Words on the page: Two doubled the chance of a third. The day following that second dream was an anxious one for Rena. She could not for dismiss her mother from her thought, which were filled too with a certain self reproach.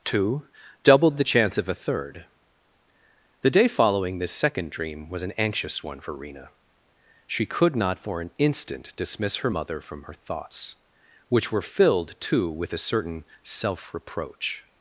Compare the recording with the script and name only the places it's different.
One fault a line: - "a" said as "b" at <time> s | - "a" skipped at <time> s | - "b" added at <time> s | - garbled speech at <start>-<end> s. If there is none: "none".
- "that" said as "this" at 4.2 s
- "an instant" added at 8.2 s
- "thought" said as "thoughts" at 10.1 s